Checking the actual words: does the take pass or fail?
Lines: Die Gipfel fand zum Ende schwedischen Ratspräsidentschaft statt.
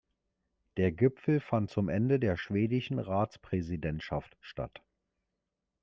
fail